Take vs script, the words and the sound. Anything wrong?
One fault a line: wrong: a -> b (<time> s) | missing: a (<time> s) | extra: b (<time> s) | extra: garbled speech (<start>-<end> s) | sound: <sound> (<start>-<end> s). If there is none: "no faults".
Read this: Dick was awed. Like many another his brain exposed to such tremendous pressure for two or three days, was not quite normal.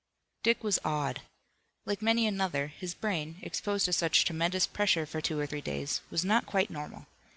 no faults